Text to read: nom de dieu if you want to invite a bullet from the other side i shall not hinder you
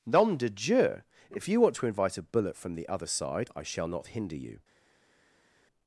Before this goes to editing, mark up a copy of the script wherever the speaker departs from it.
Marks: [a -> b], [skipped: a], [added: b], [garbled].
nom de dieu if you want to invite a bullet from the other side i shall not hinder you